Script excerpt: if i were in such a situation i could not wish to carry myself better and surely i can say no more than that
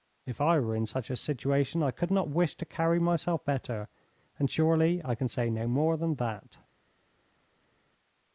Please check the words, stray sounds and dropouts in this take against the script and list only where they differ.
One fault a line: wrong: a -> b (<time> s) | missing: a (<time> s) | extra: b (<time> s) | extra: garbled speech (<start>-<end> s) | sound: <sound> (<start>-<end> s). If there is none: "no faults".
no faults